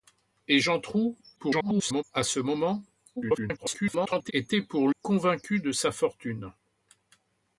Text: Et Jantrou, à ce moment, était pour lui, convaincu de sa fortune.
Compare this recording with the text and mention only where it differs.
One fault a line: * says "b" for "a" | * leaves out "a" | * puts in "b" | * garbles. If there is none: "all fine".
* garbles
* garbles
* leaves out "lui"